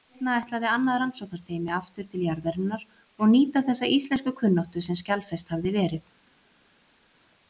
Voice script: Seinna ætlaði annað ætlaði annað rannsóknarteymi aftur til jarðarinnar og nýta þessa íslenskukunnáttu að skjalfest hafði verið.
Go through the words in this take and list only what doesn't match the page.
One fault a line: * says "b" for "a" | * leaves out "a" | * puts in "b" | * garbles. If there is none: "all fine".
* leaves out "ætlaði annað"
* says "sem" for "að"